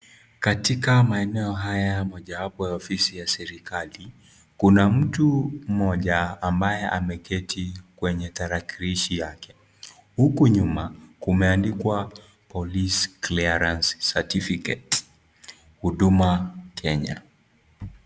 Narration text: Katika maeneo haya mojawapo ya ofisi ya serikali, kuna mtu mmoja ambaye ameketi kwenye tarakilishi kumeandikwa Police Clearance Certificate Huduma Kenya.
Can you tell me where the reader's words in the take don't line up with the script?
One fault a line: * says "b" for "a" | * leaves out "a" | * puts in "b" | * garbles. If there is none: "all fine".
* puts in "yake huku nyuma"